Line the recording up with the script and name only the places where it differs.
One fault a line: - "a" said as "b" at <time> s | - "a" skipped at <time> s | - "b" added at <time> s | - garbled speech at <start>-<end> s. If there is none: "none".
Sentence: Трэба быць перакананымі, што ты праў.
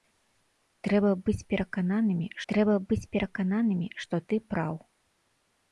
- "трэба быць перакананымі" added at 2.5 s